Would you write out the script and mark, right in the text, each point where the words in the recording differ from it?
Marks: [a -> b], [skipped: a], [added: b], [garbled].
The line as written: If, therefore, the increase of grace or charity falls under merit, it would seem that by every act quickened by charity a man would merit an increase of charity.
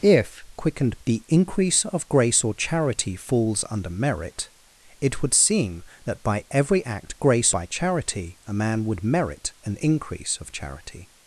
If, [therefore, -> quickened] the increase of grace or charity falls under merit, it would seem that by every act [quickened -> grace] by charity a man would merit an increase of charity.